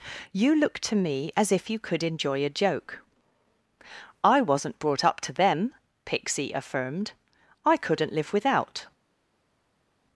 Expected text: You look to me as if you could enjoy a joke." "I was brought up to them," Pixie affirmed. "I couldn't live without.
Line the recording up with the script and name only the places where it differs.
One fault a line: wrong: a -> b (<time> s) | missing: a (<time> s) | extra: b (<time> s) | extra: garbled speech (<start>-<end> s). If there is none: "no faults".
wrong: was -> wasn't (4.4 s)